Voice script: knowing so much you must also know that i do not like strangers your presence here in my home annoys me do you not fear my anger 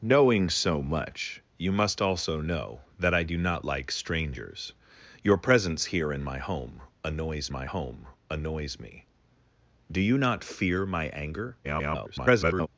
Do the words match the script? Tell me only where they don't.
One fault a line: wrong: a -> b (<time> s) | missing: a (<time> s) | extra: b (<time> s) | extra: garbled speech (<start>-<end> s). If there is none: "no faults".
extra: my home annoys (7.5 s)
extra: garbled speech (11.6-12.7 s)